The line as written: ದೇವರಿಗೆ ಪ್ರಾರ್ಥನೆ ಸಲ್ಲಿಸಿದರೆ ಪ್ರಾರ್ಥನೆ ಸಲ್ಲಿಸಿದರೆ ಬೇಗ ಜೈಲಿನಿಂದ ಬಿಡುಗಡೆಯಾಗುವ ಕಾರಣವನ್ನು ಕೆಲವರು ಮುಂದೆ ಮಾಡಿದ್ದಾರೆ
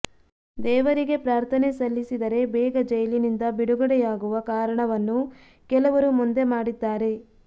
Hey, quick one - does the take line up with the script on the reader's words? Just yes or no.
no